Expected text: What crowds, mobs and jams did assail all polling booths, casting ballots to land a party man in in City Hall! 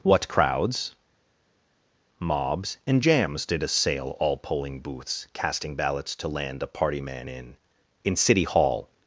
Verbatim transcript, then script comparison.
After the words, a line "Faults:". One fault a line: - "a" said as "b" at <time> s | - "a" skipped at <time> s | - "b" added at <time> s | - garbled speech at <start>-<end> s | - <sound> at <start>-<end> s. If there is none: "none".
What crowds, mobs and jams did assail all polling booths, casting ballots to land a party man in in City Hall!
Faults:
none